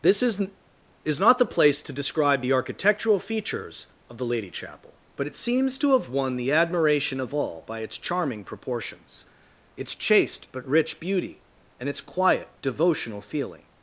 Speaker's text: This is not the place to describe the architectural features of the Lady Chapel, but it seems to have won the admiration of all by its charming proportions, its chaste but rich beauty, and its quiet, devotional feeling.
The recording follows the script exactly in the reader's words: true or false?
false